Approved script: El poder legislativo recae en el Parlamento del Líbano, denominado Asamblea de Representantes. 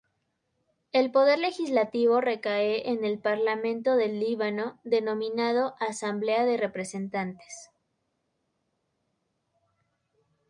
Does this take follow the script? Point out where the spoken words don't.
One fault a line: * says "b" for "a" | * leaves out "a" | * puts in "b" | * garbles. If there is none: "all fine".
all fine